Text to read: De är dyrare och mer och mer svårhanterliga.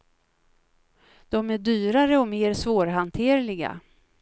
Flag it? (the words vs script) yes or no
yes